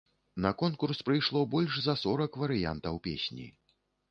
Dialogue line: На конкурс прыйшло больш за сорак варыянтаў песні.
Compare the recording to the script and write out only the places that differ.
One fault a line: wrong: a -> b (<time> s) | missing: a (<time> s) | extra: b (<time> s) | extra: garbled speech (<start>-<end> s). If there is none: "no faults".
no faults